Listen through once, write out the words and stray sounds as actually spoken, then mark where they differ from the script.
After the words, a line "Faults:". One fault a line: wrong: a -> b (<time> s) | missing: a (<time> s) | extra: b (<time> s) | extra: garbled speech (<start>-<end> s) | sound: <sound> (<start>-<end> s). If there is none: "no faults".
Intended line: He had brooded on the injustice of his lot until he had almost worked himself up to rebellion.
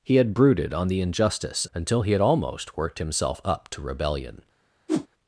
He had brooded on the injustice until he had almost worked himself up to rebellion.
Faults:
missing: of his lot (1.6 s)
sound: whoosh (4.9-5.1 s)